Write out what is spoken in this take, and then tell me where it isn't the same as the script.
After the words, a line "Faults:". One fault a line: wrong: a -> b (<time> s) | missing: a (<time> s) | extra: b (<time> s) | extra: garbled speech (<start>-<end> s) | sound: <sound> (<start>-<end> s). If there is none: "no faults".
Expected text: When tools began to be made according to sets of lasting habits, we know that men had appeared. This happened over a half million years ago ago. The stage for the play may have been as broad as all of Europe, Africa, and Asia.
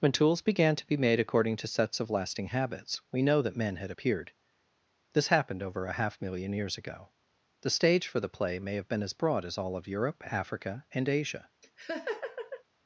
When tools began to be made according to sets of lasting habits, we know that men had appeared. This happened over a half million years ago. The stage for the play may have been as broad as all of Europe, Africa, and Asia.
Faults:
missing: ago (7.1 s)
sound: laugh (11.6-12.6 s)